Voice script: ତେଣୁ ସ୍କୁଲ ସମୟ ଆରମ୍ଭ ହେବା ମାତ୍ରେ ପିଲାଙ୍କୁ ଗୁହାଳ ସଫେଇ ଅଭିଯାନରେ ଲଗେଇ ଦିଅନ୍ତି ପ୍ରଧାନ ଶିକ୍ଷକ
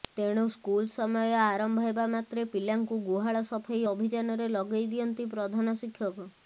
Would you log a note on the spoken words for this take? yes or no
no